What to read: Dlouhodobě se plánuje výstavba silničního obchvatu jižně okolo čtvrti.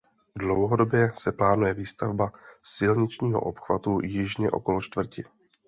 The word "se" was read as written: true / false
true